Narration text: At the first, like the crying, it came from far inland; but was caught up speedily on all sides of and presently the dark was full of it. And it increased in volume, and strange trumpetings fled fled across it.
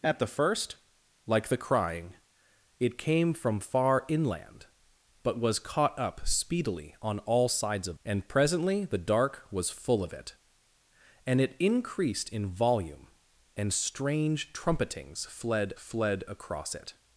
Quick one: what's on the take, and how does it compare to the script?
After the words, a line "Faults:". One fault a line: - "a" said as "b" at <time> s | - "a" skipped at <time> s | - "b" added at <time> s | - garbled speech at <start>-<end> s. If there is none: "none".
At the first, like the crying, it came from far inland; but was caught up speedily on all sides of and presently the dark was full of it. And it increased in volume, and strange trumpetings fled fled across it.
Faults:
none